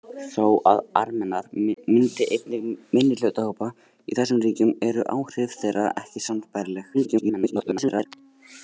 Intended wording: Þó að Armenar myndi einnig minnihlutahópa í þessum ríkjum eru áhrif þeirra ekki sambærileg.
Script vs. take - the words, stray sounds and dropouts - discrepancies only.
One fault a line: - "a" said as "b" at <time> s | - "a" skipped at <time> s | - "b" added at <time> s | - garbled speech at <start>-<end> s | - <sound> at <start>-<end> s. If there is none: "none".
- garbled speech at 6.9-8.1 s